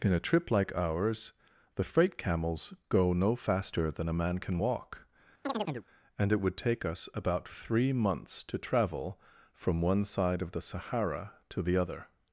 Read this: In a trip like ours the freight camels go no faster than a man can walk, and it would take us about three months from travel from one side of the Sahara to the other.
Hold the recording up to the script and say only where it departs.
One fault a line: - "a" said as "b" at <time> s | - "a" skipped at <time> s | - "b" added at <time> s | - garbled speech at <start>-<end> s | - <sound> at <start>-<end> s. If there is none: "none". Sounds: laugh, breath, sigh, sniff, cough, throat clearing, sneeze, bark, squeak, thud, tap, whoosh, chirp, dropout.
- chirp at 5.4-5.9 s
- "from" said as "to" at 8.4 s